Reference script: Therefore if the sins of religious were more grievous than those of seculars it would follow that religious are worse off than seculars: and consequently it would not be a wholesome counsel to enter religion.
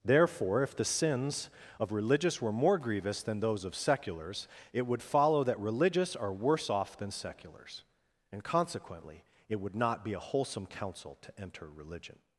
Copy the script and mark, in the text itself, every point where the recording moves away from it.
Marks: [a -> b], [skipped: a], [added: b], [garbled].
Therefore if the sins of religious were more grievous than those of seculars it would follow that religious are worse off than seculars: and consequently it would not be a wholesome counsel to enter religion.